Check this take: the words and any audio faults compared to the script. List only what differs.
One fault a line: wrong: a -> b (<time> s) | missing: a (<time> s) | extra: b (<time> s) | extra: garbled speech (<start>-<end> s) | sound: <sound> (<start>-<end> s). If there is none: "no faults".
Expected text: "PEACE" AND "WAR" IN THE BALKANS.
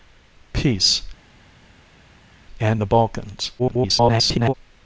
missing: WAR IN (2.8 s)
extra: garbled speech (3.6-4.5 s)